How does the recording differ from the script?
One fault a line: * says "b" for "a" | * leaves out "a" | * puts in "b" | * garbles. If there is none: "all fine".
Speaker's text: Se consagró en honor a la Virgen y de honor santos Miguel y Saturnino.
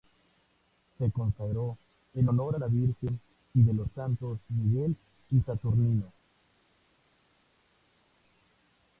* says "los" for "honor"